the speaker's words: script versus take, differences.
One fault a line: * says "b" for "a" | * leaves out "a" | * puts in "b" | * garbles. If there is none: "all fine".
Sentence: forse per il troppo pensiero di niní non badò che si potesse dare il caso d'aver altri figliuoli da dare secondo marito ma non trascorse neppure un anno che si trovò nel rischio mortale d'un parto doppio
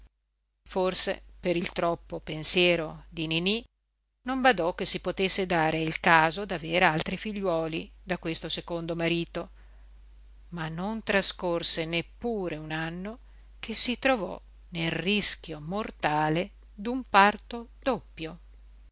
* says "questo" for "dare"